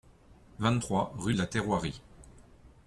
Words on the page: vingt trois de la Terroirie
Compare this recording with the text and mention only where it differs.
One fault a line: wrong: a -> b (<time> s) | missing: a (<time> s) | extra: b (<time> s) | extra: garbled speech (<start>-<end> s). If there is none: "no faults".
extra: rue (1.2 s)